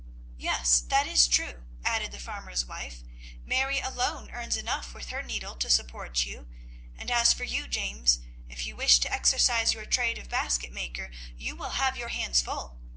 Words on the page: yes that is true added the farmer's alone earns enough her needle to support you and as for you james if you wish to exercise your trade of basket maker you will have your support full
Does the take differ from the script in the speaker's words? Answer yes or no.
yes